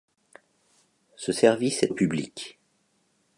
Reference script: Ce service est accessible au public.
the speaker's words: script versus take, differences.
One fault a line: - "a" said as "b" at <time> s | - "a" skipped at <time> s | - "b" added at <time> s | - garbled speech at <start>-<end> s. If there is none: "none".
- "accessible" skipped at 1.9 s